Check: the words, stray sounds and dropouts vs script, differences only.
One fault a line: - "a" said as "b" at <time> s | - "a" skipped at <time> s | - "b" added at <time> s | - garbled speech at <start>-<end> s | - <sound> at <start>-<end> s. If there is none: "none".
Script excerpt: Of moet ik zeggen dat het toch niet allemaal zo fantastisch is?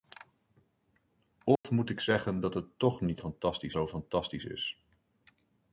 - dropout at 1.6-1.6 s
- "allemaal" said as "fantastisch" at 3.2 s